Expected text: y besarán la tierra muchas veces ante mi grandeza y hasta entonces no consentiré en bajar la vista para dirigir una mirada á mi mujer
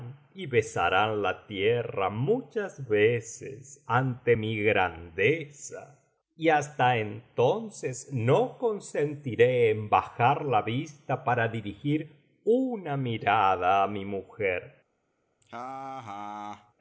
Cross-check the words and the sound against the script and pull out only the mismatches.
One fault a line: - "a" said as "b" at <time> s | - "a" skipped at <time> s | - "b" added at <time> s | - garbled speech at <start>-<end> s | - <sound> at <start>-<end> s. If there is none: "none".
- laugh at 15.4-16.7 s